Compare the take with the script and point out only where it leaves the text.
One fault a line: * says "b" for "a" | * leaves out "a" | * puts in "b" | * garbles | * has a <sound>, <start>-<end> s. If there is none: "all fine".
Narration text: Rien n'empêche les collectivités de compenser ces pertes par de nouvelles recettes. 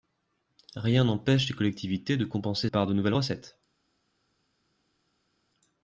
* leaves out "ces pertes"